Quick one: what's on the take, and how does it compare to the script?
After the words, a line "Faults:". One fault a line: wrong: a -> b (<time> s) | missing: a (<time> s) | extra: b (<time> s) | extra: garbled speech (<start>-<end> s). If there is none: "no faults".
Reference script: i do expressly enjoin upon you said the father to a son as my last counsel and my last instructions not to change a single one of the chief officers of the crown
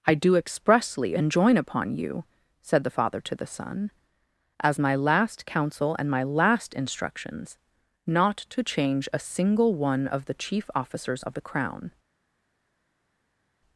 i do expressly enjoin upon you said the father to the son as my last counsel and my last instructions not to change a single one of the chief officers of the crown
Faults:
wrong: a -> the (3.4 s)